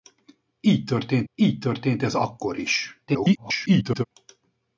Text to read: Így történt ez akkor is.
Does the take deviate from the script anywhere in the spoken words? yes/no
yes